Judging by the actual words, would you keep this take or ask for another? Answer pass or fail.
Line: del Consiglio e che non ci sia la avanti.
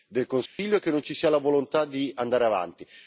fail